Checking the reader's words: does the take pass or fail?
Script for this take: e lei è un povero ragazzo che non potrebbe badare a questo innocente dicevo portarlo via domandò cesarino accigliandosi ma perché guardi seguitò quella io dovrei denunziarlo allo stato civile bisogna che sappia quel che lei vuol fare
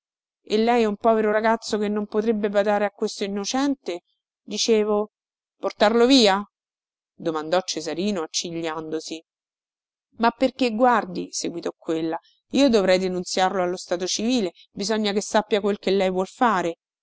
pass